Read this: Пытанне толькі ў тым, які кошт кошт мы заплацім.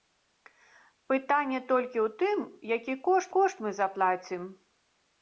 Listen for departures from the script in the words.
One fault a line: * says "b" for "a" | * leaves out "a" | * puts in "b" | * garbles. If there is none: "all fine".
all fine